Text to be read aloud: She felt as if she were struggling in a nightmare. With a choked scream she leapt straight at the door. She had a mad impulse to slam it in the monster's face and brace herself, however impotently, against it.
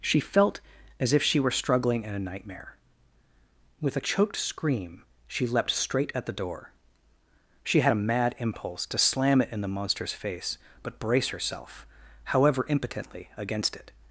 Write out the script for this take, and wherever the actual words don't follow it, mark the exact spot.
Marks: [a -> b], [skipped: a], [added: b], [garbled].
She felt as if she were struggling in a nightmare. With a choked scream she leapt straight at the door. She had a mad impulse to slam it in the monster's face [and -> but] brace herself, however impotently, against it.